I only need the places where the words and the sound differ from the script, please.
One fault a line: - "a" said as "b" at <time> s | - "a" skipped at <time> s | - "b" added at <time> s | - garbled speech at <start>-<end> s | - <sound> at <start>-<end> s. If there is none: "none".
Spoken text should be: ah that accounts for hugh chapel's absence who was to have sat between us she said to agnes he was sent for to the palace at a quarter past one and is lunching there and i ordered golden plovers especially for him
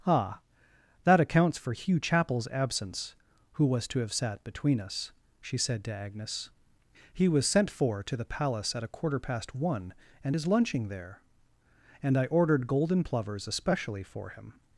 none